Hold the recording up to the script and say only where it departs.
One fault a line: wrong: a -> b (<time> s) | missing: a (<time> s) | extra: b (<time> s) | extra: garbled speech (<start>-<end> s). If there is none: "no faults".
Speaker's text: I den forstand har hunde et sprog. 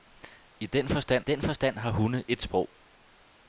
extra: den forstand (1.2 s)